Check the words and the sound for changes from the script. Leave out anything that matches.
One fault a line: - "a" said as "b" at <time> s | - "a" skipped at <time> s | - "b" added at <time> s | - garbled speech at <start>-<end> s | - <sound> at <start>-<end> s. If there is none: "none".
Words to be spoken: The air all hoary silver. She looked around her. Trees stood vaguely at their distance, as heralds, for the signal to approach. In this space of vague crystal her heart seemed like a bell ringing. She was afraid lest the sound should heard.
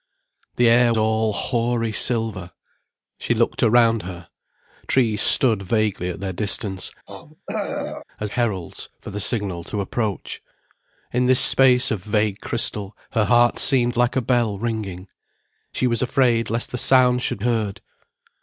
- throat clearing at 7.1-8.0 s